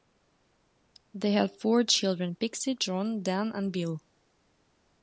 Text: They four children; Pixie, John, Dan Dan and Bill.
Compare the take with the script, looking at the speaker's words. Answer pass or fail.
fail